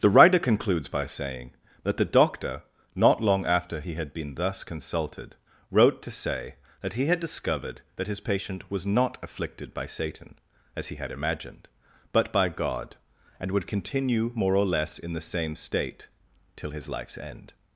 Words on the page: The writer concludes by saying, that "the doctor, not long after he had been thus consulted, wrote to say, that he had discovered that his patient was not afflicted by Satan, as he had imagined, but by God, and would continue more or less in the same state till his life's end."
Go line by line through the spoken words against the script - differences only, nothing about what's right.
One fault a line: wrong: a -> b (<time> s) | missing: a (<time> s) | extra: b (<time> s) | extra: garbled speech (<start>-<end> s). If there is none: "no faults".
no faults